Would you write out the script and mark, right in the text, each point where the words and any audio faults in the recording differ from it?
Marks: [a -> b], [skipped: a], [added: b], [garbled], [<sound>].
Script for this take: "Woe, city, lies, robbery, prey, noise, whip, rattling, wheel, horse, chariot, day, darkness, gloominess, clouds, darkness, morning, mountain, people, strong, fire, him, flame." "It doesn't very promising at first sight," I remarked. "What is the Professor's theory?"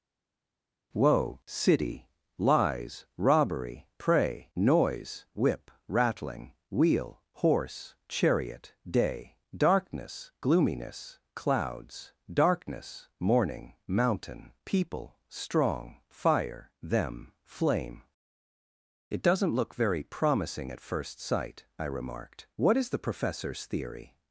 "Woe, city, lies, robbery, prey, noise, whip, rattling, wheel, horse, chariot, day, darkness, gloominess, clouds, darkness, morning, mountain, people, strong, fire, [him, -> them] flame." "It doesn't [added: look] very promising at first sight," I remarked. "What is the Professor's theory?"